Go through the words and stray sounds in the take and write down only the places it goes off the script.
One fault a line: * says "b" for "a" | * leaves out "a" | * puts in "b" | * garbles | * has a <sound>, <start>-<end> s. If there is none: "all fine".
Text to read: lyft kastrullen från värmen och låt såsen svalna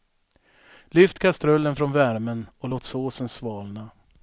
all fine